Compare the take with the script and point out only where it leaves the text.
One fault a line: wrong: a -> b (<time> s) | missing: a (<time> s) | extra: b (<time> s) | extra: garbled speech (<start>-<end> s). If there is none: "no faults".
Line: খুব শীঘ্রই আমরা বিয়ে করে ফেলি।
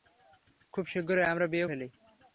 missing: করে (1.7 s)